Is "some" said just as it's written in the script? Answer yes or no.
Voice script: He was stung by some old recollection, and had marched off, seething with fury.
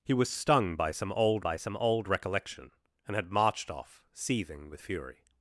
yes